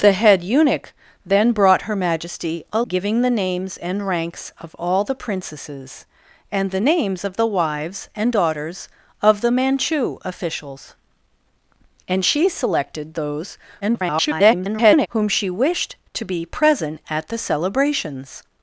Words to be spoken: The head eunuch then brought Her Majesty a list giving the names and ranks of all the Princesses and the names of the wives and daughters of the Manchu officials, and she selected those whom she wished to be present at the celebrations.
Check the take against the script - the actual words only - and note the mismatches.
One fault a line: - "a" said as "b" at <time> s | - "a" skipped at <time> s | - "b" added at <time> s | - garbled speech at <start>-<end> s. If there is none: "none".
- "list" skipped at 2.8 s
- garbled speech at 13.8-15.1 s